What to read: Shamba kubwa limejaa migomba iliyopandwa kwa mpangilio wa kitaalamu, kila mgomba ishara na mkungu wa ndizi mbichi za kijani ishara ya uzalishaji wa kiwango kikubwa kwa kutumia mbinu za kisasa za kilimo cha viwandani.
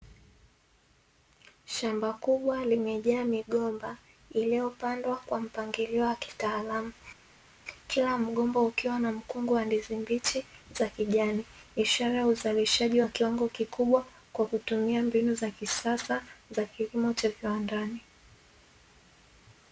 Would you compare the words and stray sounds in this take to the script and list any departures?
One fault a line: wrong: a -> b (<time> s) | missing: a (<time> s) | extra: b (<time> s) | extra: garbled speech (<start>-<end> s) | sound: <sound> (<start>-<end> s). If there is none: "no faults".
wrong: ishara -> ukiwa (8.6 s)